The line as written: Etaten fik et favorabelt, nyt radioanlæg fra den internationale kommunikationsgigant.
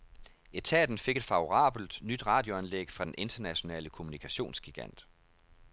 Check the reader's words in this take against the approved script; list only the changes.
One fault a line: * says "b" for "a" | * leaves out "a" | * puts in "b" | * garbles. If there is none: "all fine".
all fine